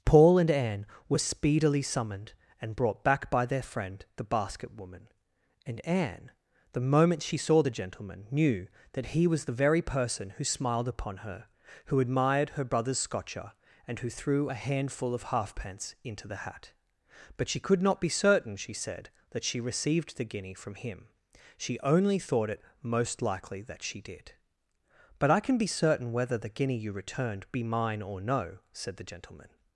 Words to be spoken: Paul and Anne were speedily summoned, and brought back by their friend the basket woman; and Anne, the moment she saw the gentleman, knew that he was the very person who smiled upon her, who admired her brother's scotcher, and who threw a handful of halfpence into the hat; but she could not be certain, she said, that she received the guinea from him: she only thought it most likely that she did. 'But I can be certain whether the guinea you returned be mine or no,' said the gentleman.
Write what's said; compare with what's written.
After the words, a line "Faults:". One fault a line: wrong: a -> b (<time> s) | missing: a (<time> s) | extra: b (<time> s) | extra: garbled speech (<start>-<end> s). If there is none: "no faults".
Paul and Anne were speedily summoned, and brought back by their friend the basket woman; and Anne, the moment she saw the gentleman, knew that he was the very person who smiled upon her, who admired her brother's scotcher, and who threw a handful of halfpence into the hat; but she could not be certain, she said, that she received the guinea from him: she only thought it most likely that she did. 'But I can be certain whether the guinea you returned be mine or no,' said the gentleman.
Faults:
no faults